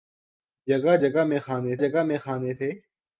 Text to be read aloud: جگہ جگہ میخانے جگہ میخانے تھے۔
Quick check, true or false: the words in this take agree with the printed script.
true